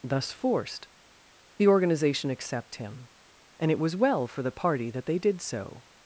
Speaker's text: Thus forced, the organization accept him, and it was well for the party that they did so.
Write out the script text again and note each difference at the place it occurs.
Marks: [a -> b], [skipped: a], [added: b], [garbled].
Thus forced, the organization accept him, and it was well for the party that they did so.